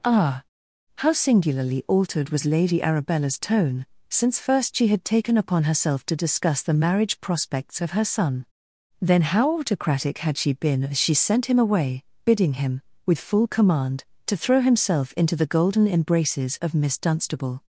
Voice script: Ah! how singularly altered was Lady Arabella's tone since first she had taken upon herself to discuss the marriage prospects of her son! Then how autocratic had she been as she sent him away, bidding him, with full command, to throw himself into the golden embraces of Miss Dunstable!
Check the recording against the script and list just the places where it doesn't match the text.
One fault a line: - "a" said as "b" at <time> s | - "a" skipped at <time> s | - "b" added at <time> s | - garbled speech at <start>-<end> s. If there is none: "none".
none